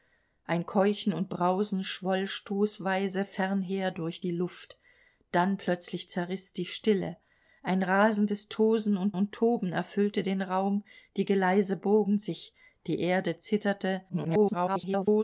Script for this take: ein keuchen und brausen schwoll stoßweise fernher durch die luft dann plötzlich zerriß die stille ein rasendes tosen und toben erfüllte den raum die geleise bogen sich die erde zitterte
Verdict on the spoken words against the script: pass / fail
fail